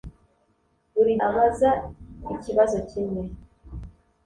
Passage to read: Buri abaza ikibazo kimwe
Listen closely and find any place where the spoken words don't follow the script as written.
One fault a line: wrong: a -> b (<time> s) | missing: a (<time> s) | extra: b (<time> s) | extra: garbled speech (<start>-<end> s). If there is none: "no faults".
no faults